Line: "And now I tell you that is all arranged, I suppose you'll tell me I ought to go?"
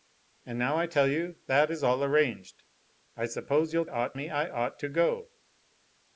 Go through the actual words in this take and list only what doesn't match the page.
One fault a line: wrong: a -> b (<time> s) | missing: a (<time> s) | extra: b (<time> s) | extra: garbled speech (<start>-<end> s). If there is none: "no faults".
wrong: tell -> ought (3.9 s)